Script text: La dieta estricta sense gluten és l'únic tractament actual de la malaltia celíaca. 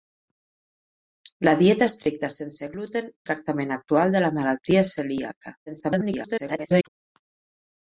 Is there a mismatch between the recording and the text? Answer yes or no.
yes